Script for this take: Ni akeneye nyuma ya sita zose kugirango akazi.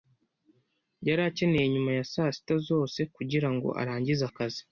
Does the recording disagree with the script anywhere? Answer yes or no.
yes